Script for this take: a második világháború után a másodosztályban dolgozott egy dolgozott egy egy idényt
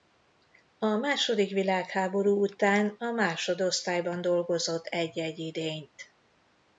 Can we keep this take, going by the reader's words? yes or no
no